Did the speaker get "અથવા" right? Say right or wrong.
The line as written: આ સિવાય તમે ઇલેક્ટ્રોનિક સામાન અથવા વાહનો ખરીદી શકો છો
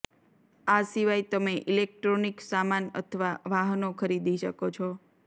right